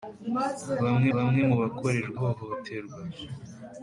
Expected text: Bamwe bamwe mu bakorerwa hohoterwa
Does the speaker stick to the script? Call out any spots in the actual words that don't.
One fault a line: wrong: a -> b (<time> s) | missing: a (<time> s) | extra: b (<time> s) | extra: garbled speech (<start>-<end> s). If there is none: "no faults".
no faults